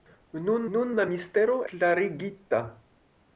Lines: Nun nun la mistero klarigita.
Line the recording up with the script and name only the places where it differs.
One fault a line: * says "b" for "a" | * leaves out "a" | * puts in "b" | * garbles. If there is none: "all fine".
all fine